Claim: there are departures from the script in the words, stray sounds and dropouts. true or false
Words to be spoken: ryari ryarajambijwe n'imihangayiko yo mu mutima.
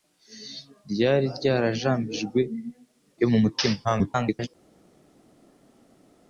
true